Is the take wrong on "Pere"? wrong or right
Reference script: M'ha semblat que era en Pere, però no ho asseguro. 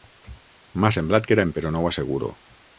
wrong